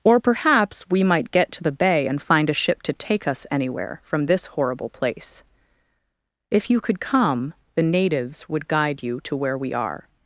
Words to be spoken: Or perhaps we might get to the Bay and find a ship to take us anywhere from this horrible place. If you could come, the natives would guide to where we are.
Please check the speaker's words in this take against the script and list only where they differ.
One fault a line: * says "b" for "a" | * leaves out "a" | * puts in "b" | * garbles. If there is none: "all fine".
* puts in "you"